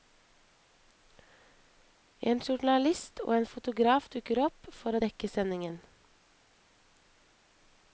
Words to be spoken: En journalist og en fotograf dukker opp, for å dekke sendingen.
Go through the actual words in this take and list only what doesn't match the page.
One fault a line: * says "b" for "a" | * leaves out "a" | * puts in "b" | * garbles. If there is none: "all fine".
all fine